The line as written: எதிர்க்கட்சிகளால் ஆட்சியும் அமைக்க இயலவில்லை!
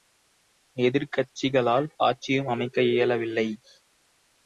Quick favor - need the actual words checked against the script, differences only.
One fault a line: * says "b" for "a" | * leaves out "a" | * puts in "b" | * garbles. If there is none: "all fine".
all fine